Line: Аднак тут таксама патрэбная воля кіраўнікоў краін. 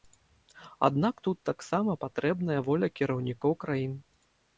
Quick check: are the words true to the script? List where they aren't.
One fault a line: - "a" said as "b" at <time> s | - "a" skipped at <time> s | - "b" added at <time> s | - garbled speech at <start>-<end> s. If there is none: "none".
none